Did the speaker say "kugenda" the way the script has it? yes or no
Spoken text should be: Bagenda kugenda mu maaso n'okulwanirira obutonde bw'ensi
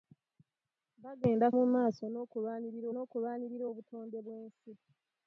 no